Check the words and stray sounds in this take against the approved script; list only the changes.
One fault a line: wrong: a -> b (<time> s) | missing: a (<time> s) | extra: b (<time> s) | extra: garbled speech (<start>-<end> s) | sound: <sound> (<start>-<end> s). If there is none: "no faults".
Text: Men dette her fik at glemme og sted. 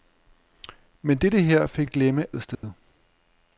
sound: dropout (2.5-2.6 s)